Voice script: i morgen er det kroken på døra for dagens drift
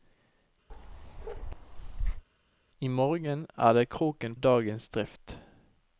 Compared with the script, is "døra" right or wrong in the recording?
wrong